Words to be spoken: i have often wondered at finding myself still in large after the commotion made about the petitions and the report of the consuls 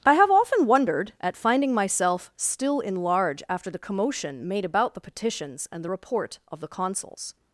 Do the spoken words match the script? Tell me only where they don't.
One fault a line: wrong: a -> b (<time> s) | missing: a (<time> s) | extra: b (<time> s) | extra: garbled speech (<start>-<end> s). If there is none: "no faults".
no faults